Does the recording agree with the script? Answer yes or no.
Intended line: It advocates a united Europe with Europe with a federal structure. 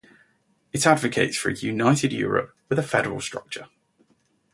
no